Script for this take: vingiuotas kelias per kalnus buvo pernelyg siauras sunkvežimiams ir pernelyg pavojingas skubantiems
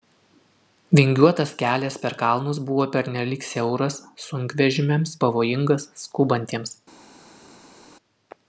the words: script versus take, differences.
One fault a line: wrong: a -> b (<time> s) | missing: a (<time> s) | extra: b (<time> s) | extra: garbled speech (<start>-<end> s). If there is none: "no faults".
missing: ir pernelyg (5.2 s)